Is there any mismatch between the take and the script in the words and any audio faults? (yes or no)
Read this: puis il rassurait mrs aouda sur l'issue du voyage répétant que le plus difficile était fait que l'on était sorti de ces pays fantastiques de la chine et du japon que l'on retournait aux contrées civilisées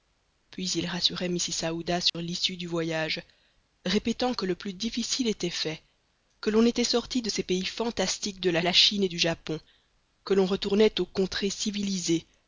yes